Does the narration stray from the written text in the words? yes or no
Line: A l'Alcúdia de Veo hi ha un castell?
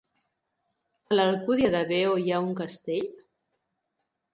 no